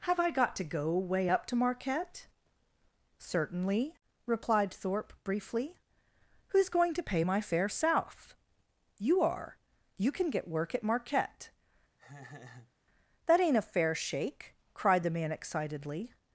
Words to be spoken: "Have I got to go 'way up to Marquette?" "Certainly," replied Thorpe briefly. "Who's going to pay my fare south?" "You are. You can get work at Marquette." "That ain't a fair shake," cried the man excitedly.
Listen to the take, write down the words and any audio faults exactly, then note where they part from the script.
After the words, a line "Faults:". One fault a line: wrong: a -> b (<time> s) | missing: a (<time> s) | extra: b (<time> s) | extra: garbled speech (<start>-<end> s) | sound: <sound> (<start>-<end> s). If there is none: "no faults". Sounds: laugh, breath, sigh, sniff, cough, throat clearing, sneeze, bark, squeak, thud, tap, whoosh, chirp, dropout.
"Have I got to go 'way up to Marquette?" "Certainly," replied Thorpe briefly. "Who's going to pay my fare south?" "You are. You can get work at Marquette." "That ain't a fair shake," cried the man excitedly.
Faults:
sound: laugh (12.0-12.7 s)